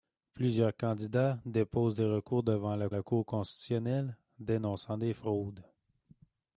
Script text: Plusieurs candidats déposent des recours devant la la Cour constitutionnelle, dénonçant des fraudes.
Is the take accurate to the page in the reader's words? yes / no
yes